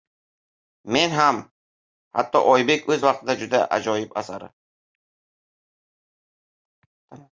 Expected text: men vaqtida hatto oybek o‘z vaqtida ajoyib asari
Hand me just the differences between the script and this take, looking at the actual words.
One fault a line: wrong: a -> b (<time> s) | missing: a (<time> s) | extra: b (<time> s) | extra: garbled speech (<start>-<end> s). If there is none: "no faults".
wrong: vaqtida -> ham (1.2 s)
extra: juda (3.4 s)